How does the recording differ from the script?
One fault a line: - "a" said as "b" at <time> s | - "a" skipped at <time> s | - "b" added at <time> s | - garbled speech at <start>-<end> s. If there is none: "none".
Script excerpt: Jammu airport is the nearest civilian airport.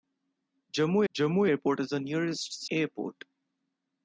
- "jammu" added at 1.1 s
- "civilian" skipped at 2.6 s